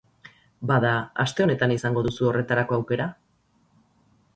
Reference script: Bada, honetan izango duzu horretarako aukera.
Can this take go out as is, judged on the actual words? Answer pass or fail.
fail